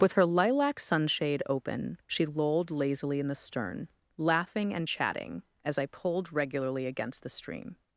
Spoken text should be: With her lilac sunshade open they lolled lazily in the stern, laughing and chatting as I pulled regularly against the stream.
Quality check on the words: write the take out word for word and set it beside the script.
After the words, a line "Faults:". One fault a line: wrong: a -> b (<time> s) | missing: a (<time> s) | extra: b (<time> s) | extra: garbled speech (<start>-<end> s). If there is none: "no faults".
With her lilac sunshade open she lolled lazily in the stern, laughing and chatting as I pulled regularly against the stream.
Faults:
wrong: they -> she (2.1 s)